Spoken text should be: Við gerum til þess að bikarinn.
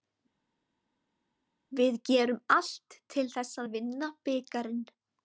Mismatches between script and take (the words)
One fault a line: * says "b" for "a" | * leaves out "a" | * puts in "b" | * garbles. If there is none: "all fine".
* puts in "allt"
* puts in "vinna"